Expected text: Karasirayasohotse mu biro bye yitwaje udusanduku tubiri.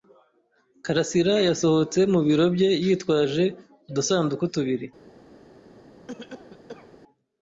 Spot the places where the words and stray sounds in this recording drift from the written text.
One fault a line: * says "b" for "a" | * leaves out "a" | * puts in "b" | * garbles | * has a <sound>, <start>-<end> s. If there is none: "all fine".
* has a cough, 6.1-7.0 s